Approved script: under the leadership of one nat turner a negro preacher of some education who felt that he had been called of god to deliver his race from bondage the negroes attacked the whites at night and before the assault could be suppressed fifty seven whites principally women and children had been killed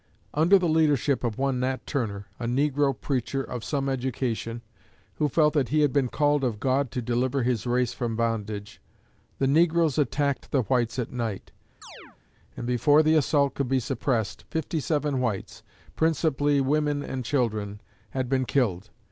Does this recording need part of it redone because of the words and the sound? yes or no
yes